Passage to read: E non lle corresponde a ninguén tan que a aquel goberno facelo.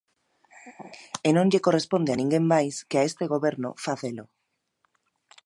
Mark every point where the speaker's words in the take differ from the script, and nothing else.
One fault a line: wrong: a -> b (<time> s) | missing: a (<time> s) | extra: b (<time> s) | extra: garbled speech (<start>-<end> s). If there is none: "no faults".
wrong: tan -> máis (2.5 s)
wrong: aquel -> este (3.1 s)